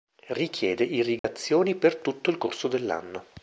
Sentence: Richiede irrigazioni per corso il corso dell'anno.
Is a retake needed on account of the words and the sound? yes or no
yes